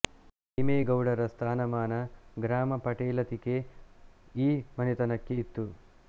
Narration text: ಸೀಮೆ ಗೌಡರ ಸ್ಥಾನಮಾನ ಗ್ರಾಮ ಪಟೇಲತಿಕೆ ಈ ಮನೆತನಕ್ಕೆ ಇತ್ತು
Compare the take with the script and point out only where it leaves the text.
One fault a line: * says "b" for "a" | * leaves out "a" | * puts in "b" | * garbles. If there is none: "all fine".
all fine